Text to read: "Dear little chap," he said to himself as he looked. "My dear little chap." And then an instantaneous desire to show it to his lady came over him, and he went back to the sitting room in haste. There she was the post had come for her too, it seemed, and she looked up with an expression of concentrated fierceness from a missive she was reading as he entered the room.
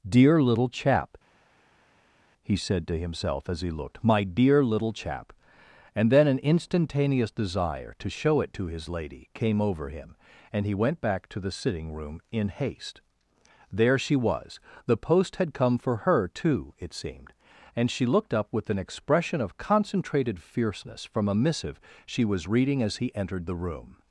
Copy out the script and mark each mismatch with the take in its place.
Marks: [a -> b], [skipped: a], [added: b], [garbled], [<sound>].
"Dear little chap," he said to himself as he looked. "My dear little chap." And then an instantaneous desire to show it to his lady came over him, and he went back to the sitting room in haste. There she was the post had come for her too, it seemed, and she looked up with an expression of concentrated fierceness from a missive she was reading as he entered the room.